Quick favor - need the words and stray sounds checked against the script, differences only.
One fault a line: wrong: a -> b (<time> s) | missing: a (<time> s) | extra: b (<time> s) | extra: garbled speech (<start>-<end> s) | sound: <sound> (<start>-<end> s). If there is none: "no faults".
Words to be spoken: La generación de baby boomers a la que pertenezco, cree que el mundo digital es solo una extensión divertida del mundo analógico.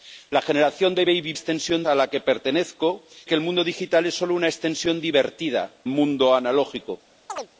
wrong: boomers -> extensión (1.3 s)
missing: cree (3.0 s)
missing: del (5.7 s)
sound: chirp (7.3-7.5 s)